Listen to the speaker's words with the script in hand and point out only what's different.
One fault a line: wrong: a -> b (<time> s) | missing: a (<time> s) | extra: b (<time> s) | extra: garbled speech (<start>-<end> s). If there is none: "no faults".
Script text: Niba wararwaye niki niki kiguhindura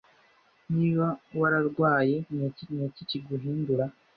no faults